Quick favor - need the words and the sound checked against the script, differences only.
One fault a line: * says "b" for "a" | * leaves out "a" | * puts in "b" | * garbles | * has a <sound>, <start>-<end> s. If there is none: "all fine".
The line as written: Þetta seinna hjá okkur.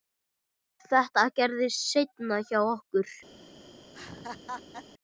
* puts in "gerðist"
* has a laugh, 3.9-4.9 s